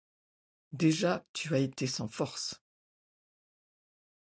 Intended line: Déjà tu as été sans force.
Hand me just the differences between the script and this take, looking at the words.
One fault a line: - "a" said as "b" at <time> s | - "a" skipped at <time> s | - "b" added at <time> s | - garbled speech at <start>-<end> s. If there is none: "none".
none